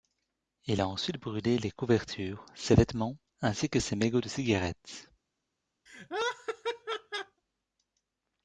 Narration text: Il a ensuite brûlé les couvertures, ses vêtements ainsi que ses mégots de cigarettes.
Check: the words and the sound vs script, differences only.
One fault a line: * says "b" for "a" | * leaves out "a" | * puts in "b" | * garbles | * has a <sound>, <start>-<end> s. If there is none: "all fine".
* has a laugh, 5.9-7.4 s